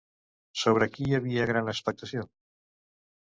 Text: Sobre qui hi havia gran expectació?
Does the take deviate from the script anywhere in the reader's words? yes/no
no